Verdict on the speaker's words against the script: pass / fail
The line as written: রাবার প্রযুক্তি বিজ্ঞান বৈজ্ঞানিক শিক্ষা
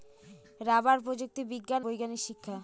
pass